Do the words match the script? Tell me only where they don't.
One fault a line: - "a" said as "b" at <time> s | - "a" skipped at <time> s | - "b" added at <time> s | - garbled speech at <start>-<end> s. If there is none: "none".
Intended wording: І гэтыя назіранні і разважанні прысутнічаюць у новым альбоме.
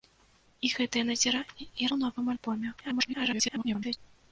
- "разважанні прысутнічаюць" skipped at 1.9 s
- garbled speech at 2.8-4.0 s